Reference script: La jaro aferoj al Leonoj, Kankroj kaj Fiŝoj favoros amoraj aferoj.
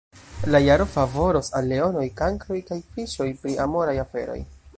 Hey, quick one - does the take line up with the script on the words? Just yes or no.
no